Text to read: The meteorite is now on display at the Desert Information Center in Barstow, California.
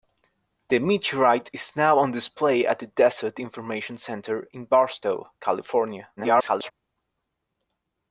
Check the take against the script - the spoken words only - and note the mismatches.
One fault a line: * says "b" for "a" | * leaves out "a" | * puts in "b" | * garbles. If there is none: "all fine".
* garbles